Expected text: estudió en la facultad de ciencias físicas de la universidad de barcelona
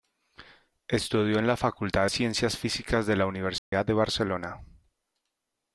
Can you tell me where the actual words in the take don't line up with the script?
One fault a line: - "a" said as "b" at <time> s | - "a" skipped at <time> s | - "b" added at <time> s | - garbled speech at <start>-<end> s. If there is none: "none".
- "de" skipped at 2.1 s